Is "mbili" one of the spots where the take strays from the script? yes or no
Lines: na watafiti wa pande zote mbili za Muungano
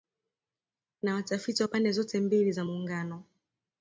no